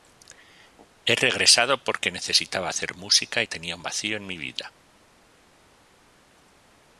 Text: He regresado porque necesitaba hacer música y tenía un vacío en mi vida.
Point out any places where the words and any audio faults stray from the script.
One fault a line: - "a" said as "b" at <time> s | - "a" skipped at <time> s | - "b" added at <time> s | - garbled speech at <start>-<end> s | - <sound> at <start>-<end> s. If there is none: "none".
none